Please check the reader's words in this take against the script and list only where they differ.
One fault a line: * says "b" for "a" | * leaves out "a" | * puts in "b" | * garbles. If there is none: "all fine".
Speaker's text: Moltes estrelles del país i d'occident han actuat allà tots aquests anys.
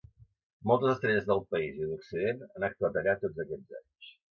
all fine